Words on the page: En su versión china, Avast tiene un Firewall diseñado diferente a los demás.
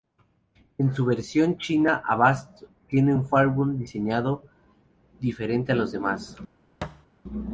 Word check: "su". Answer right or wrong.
right